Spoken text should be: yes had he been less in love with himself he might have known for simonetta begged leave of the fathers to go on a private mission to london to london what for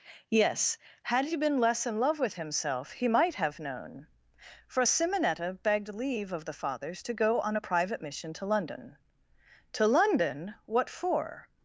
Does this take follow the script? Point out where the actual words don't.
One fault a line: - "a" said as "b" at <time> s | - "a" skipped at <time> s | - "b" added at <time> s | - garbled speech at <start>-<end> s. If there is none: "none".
none